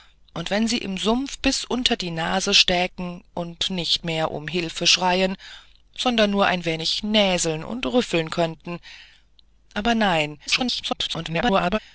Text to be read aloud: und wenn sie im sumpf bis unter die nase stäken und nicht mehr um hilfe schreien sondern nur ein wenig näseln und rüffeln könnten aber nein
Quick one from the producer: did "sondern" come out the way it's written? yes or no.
yes